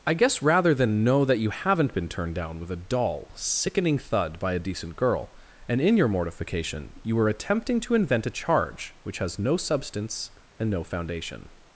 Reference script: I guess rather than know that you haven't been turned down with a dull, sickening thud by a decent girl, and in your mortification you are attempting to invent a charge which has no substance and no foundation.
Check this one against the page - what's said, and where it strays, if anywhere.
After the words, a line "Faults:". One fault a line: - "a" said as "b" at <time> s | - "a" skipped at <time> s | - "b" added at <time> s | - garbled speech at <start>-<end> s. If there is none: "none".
I guess rather than know that you haven't been turned down with a dull, sickening thud by a decent girl, and in your mortification you are attempting to invent a charge which has no substance and no foundation.
Faults:
none